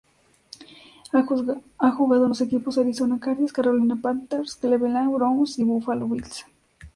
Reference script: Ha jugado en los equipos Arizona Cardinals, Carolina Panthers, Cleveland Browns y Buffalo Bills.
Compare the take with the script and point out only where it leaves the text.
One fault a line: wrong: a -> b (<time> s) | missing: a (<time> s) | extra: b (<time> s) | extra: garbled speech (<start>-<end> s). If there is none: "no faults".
no faults